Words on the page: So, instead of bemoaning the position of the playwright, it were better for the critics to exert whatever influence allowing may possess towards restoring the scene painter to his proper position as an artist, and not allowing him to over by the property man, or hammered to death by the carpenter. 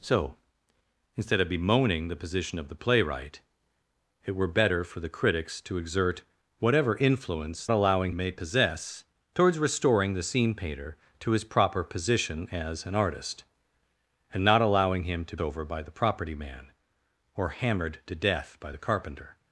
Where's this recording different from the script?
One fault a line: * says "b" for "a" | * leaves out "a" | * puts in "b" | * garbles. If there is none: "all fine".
all fine